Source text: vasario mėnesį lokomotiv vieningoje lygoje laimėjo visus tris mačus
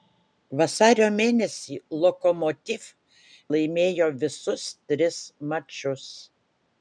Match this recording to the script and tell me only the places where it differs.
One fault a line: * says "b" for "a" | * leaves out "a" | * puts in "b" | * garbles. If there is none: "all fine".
* leaves out "vieningoje lygoje"